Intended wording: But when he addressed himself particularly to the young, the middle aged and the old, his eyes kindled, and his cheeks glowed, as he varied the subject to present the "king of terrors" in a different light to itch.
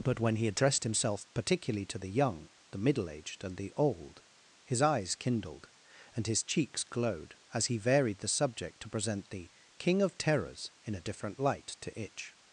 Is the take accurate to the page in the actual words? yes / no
yes